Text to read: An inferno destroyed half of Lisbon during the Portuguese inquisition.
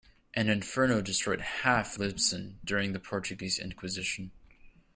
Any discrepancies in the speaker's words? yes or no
yes